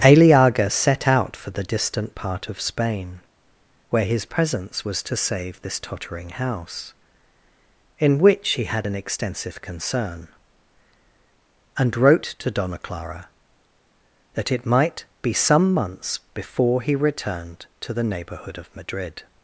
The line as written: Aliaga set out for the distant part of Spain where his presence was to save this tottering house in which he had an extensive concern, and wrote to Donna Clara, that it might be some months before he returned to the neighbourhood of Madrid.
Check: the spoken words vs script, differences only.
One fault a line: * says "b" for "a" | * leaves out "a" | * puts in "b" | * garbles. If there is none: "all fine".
all fine